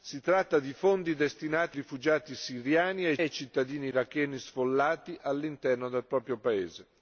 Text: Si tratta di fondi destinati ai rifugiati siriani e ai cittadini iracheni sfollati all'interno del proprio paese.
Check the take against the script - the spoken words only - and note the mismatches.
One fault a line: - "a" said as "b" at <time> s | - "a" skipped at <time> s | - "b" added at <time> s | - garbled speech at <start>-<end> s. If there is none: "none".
- "ai" skipped at 1.8 s
- "ai" added at 3.2 s